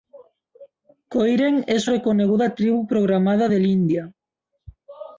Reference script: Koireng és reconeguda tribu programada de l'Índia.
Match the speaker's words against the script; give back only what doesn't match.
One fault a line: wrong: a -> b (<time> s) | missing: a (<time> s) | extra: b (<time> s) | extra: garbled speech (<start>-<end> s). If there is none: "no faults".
no faults